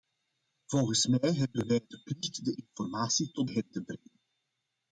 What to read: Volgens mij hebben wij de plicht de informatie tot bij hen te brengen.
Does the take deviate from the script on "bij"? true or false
true